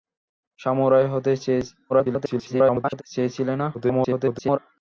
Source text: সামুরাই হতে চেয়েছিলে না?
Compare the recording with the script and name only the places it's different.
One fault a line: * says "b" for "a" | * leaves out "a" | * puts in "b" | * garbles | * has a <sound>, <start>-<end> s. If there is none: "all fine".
* garbles
* garbles